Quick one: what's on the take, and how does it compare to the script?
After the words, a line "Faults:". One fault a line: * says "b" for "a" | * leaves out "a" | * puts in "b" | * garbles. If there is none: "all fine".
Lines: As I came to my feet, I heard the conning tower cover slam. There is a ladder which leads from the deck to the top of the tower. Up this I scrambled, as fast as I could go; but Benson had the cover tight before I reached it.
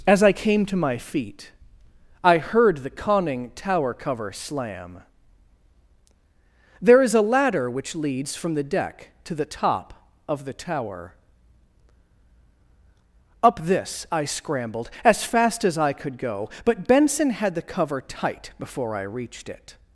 As I came to my feet, I heard the conning tower cover slam. There is a ladder which leads from the deck to the top of the tower. Up this I scrambled, as fast as I could go; but Benson had the cover tight before I reached it.
Faults:
all fine